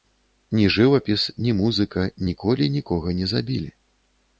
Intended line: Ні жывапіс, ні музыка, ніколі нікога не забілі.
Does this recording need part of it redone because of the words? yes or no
no